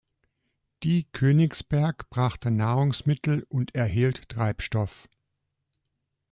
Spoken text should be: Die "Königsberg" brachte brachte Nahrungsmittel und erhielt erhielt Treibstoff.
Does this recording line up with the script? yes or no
no